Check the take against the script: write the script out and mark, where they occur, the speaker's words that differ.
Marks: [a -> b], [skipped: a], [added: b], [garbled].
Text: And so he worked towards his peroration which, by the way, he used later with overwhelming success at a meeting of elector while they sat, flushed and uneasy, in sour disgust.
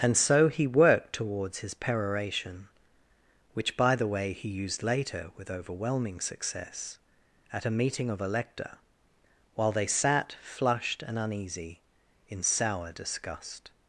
And so he worked towards his peroration which, by the way, he used later with overwhelming success at a meeting of elector while they sat, flushed and uneasy, in sour disgust.